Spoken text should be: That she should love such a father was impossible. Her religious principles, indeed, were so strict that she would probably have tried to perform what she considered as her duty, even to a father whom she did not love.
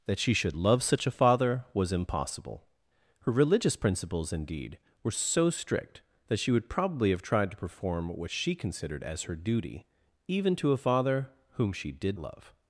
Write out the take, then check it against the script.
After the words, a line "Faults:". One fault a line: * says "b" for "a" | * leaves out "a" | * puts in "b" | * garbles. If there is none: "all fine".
That she should love such a father was impossible. Her religious principles, indeed, were so strict that she would probably have tried to perform what she considered as her duty, even to a father whom she did love.
Faults:
* leaves out "not"